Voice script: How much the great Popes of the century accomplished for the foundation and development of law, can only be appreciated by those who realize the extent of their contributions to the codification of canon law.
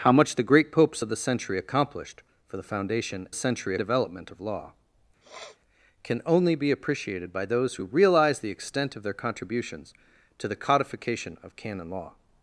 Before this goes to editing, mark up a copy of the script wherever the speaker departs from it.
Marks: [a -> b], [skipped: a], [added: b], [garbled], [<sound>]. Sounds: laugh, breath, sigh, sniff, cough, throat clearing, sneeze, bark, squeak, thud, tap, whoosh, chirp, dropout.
How much the great Popes of the century accomplished for the foundation [and -> century] development of law, [sniff] can only be appreciated by those who realize the extent of their contributions to the codification of canon law.